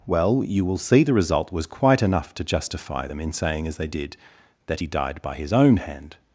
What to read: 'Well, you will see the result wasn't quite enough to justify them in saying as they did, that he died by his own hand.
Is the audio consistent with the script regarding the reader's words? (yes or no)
no